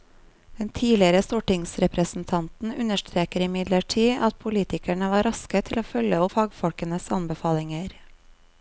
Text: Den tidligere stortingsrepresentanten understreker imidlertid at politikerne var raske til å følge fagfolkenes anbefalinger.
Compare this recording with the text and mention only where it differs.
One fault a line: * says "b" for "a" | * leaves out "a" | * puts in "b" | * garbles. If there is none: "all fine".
all fine